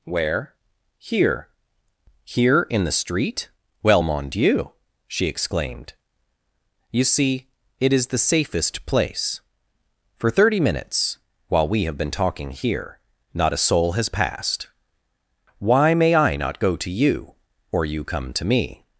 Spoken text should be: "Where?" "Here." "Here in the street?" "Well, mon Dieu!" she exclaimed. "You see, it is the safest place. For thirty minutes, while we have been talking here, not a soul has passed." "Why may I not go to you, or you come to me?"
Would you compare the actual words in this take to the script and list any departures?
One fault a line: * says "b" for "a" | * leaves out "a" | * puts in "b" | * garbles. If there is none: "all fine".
all fine